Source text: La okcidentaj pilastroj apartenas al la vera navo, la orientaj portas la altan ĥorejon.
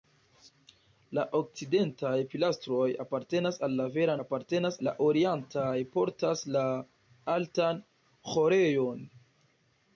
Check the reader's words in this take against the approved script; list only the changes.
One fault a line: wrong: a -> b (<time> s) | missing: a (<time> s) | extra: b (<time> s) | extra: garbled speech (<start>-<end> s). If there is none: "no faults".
wrong: navo -> apartenas (4.2 s)